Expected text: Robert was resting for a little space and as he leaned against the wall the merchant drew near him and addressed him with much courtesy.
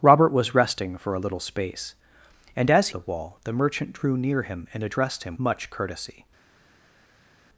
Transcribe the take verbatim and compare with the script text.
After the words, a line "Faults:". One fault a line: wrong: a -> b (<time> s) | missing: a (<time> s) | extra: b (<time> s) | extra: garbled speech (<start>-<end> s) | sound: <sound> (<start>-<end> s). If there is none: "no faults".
Robert was resting for a little space and as the wall the merchant drew near him and addressed him much courtesy.
Faults:
missing: he leaned against (2.9 s)
missing: with (5.4 s)